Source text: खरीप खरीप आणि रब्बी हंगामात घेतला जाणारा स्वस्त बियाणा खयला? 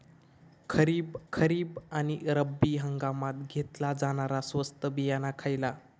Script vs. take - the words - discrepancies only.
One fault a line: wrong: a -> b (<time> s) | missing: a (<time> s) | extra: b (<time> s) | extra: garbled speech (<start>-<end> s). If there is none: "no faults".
no faults